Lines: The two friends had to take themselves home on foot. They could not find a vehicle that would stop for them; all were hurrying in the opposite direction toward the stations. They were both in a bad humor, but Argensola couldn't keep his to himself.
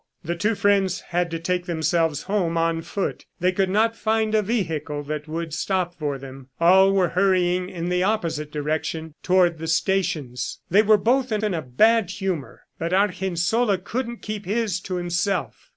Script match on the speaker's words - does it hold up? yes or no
no